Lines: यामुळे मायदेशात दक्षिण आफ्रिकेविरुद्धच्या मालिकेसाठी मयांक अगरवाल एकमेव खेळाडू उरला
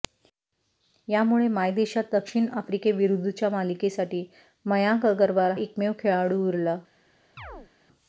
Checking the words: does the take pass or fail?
pass